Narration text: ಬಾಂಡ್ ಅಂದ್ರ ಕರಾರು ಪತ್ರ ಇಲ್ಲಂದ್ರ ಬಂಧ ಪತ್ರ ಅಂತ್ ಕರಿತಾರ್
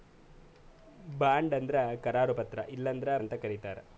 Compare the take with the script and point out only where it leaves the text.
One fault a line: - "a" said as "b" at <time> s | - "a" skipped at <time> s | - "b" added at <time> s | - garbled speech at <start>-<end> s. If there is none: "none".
- "ಬಂಧ ಪತ್ರ" skipped at 3.2 s